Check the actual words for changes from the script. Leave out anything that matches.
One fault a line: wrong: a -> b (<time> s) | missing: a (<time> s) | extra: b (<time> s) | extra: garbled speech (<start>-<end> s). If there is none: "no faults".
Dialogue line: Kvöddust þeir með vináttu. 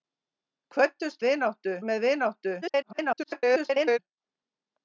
wrong: þeir -> vináttu (1.3 s)
extra: garbled speech (2.6-4.0 s)